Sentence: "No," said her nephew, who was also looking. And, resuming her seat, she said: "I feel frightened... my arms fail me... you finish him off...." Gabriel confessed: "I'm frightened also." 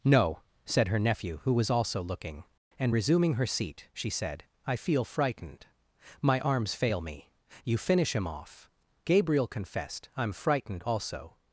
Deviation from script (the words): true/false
false